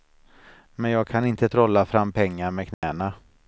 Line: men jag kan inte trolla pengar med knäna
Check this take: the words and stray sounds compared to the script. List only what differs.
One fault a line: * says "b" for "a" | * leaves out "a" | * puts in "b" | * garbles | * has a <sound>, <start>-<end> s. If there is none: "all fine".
* puts in "fram"
* has a dropout, 2.7-2.8 s